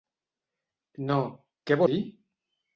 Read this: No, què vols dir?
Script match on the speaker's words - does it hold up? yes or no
no